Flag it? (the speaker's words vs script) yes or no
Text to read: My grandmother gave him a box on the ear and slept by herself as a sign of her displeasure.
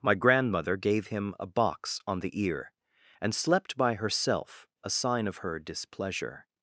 yes